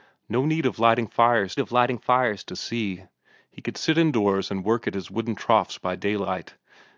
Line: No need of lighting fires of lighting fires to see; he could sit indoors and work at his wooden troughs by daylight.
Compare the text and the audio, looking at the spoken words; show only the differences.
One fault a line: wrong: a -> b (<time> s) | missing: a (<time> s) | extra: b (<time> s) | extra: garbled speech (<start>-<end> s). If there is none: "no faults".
no faults